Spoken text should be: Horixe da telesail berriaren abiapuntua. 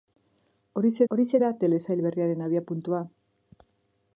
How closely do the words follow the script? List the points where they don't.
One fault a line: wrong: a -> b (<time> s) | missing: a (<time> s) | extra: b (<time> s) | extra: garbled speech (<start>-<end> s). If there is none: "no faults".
extra: horixe (1.1 s)